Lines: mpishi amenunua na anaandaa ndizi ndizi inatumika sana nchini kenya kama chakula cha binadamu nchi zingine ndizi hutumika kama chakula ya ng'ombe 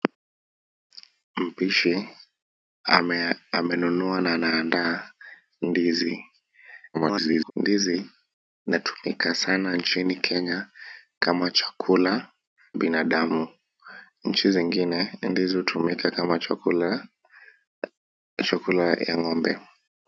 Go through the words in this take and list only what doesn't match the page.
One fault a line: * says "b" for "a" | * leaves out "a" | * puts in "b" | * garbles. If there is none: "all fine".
* garbles
* leaves out "cha"